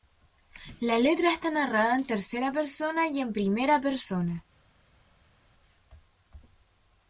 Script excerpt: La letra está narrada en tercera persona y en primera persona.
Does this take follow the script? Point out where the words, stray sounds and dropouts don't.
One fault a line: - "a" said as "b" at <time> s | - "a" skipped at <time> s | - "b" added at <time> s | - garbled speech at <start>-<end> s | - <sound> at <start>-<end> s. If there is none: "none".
none